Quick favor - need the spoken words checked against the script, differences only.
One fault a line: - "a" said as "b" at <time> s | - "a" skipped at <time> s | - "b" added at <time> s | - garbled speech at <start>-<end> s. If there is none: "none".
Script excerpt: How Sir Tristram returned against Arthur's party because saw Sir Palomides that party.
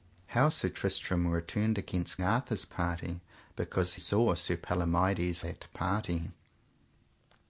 none